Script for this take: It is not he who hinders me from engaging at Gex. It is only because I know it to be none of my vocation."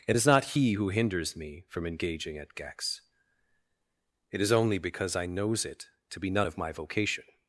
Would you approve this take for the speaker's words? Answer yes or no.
no